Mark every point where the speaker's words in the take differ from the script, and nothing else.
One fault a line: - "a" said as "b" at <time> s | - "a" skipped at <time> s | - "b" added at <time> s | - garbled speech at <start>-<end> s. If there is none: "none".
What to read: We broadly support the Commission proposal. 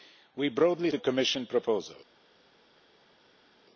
- "support" skipped at 0.9 s